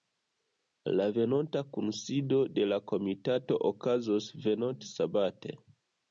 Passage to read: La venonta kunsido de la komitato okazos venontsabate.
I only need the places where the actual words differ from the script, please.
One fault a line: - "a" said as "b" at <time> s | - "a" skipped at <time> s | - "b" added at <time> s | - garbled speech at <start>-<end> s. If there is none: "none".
none